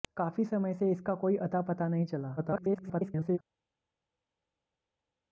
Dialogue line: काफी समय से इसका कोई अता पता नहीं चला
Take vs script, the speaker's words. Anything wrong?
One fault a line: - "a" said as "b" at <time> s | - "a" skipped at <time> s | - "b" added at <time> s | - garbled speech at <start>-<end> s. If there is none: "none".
- garbled speech at 2.4-3.4 s